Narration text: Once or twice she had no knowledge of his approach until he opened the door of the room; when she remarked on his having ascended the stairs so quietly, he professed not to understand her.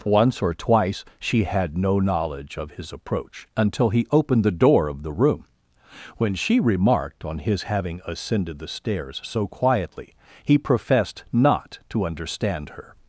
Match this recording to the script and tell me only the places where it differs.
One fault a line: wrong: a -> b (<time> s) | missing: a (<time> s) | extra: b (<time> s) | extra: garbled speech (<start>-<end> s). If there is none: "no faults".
no faults